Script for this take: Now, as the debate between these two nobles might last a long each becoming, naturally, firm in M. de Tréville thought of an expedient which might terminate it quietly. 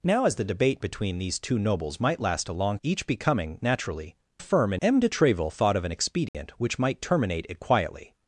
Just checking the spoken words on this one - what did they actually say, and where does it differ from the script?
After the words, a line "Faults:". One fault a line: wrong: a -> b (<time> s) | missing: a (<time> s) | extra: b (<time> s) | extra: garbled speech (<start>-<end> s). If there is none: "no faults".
Now, as the debate between these two nobles might last a long each becoming, naturally, firm in M. de Tréville thought of an expedient which might terminate it quietly.
Faults:
no faults